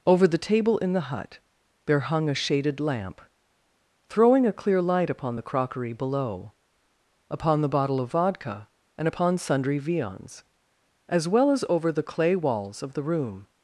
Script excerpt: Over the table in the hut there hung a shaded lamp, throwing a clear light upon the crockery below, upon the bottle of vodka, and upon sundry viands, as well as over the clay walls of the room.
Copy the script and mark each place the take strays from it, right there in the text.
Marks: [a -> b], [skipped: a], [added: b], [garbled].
Over the table in the hut there hung a shaded lamp, throwing a clear light upon the crockery below, upon the bottle of vodka, and upon sundry viands, as well as over the clay walls of the room.